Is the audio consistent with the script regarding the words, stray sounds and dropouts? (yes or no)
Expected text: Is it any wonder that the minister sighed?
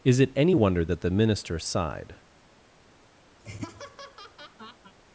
no